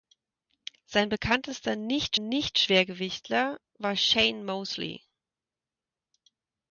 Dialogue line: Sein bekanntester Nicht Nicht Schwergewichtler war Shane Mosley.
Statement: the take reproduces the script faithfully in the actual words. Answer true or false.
true